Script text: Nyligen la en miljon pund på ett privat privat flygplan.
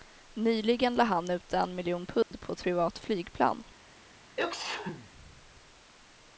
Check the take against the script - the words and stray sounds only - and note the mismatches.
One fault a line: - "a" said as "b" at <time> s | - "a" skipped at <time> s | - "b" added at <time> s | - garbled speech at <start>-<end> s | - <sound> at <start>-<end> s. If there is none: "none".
- "han ut" added at 1.0 s
- dropout at 2.2-2.3 s
- "privat" skipped at 3.0 s
- sneeze at 4.4-5.1 s